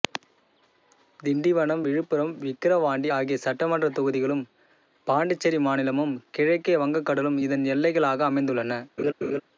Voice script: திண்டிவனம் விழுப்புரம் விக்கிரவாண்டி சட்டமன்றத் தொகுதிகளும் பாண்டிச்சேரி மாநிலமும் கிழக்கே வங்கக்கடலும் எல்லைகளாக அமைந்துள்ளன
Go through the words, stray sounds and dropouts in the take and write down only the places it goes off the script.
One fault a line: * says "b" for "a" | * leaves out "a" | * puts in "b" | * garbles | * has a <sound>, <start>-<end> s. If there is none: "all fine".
* puts in "ஆகிய"
* puts in "இதன்"
* has a laugh, 9.0-9.4 s